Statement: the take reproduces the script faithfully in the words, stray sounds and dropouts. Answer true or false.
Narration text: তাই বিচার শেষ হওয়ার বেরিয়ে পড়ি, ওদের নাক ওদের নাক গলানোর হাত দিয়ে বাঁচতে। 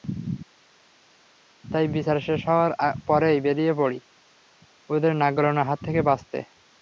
false